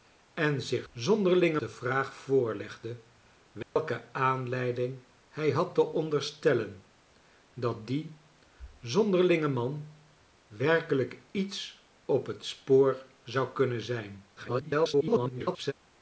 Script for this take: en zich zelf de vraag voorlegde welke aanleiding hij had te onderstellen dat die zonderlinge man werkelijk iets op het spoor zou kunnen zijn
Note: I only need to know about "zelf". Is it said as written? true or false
false